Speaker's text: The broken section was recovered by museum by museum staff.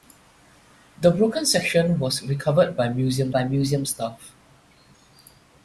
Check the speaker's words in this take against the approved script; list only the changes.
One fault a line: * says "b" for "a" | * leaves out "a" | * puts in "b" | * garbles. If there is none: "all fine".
all fine